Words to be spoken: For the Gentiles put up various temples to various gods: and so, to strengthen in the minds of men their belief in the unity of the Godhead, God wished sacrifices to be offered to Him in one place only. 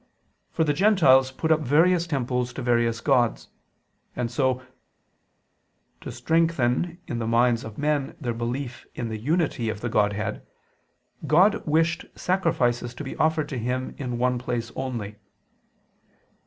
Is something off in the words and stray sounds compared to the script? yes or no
no